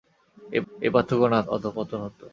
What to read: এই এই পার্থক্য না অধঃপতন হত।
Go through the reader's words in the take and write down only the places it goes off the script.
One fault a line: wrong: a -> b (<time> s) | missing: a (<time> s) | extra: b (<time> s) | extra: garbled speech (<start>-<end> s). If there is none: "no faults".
no faults